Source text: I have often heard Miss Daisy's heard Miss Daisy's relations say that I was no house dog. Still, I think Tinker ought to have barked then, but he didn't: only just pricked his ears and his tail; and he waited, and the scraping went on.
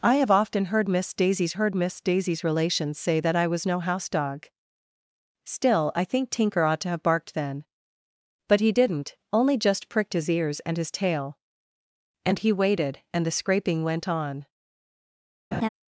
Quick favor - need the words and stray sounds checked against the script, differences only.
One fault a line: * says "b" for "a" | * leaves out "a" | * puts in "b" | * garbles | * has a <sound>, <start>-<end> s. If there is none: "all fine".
* has a laugh, 15.5-15.7 s